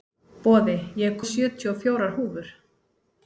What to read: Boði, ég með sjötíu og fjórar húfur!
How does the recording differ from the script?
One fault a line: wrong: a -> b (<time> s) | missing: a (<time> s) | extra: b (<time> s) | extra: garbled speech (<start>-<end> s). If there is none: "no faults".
no faults